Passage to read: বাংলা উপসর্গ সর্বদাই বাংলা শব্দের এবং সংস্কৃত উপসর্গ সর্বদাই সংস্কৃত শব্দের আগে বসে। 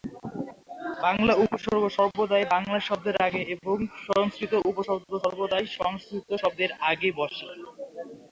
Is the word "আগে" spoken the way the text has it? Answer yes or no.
yes